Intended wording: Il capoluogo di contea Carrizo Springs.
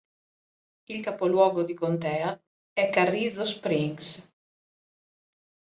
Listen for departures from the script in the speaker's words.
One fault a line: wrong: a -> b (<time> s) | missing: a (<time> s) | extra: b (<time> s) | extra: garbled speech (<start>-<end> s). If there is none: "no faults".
extra: è (2.7 s)